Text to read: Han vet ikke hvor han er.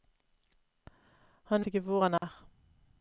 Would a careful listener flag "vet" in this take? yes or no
yes